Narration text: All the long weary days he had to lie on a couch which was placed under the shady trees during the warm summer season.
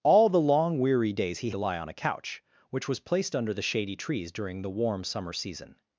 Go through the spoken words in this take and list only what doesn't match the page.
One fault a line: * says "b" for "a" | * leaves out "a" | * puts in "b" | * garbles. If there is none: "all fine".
* leaves out "had"